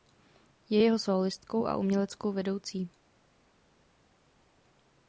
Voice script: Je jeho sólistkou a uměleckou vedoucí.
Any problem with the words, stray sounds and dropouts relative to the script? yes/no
no